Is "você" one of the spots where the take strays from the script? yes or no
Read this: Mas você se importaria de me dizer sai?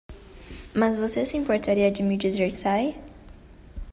no